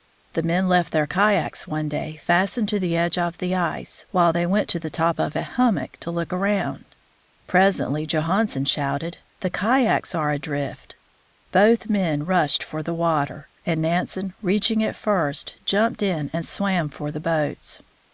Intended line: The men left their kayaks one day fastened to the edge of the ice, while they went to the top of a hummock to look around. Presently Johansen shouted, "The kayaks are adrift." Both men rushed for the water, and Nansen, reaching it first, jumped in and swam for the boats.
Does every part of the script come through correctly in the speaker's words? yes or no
yes